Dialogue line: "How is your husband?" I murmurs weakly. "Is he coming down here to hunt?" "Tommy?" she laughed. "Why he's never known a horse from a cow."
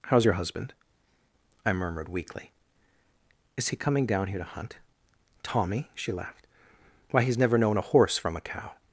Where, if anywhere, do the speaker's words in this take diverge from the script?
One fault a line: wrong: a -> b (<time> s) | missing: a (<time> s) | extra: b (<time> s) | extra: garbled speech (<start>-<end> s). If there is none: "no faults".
wrong: murmurs -> murmured (1.7 s)